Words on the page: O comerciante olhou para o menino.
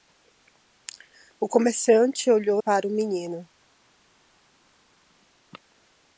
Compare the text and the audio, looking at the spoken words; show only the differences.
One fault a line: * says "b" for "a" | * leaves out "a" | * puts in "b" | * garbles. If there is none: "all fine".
all fine